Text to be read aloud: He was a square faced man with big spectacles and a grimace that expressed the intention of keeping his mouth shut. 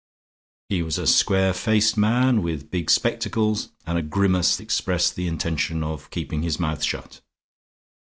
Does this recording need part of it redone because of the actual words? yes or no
yes